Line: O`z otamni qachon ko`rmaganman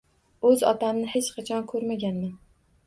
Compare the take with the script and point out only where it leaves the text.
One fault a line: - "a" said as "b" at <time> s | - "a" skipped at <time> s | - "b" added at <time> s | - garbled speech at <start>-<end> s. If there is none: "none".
- "hech" added at 1.1 s